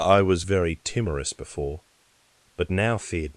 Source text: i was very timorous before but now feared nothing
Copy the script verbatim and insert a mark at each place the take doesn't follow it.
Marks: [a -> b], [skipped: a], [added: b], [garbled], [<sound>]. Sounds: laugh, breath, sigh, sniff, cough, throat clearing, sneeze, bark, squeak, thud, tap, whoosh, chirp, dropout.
i was very timorous before but now feared [skipped: nothing]